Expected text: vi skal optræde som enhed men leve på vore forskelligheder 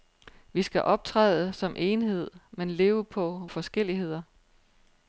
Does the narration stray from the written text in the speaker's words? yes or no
yes